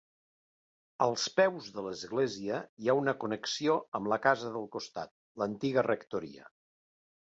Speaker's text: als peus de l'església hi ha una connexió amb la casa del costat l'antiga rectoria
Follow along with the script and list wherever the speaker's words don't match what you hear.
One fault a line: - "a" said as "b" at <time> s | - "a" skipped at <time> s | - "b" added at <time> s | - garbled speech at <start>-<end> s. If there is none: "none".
none